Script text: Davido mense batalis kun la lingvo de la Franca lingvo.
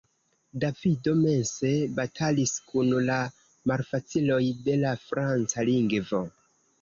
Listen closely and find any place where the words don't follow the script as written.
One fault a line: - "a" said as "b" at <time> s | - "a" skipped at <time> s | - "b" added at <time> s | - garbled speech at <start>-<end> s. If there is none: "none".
- "lingvo" said as "malfaciloj" at 3.7 s